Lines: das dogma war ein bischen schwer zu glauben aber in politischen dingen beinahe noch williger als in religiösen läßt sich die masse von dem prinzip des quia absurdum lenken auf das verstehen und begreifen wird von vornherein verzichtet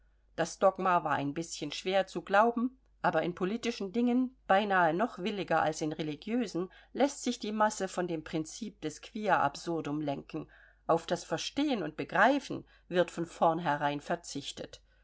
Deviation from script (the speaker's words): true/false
false